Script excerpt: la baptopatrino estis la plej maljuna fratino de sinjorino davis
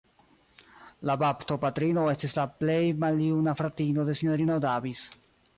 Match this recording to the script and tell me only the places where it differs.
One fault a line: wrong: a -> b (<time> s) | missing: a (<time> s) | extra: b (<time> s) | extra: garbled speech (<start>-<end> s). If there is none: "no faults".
no faults